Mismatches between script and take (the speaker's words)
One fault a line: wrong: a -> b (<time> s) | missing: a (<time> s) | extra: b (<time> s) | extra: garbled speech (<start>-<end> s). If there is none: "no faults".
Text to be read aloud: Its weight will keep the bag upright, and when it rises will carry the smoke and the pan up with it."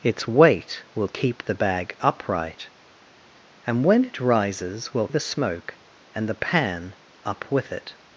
missing: carry (5.1 s)